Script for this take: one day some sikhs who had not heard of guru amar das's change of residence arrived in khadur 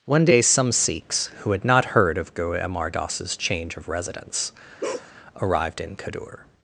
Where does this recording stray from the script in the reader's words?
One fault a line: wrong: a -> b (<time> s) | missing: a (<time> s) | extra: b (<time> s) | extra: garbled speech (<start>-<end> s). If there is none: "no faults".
no faults